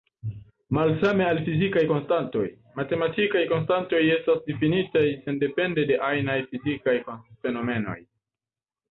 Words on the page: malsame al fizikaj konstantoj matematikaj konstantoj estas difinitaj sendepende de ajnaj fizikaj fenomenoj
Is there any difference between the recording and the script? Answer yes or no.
no